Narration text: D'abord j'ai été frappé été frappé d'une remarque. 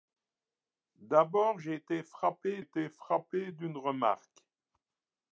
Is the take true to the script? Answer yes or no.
yes